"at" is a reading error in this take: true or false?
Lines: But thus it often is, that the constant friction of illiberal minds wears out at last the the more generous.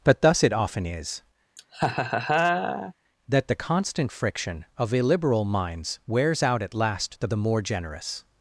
false